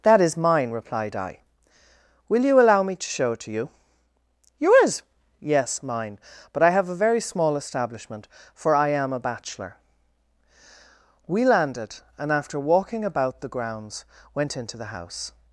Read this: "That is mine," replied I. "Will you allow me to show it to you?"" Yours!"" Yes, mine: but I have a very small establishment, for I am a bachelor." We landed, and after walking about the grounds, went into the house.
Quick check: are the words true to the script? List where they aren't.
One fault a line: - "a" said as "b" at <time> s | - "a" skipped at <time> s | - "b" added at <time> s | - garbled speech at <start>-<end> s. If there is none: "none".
none